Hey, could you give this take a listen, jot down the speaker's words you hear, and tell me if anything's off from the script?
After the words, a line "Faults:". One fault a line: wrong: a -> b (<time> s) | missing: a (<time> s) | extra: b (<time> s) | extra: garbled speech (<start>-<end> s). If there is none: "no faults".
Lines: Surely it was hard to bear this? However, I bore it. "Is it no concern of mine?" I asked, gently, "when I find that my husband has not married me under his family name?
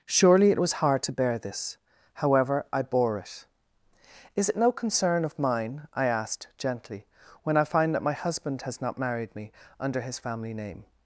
Surely it was hard to bear this? However, I bore it. "Is it no concern of mine?" I asked, gently, "when I find that my husband has not married me under his family name?
Faults:
no faults